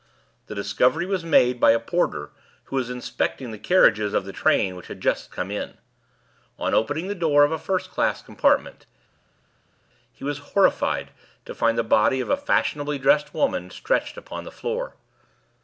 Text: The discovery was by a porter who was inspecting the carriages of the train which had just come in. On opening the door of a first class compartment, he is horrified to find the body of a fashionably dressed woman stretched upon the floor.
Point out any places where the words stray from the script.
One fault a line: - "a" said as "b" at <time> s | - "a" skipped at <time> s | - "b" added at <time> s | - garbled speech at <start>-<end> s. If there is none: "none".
- "made" added at 1.2 s
- "is" said as "was" at 10.2 s